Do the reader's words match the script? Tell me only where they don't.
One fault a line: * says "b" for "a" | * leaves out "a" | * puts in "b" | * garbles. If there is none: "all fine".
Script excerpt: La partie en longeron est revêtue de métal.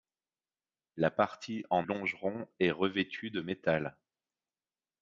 all fine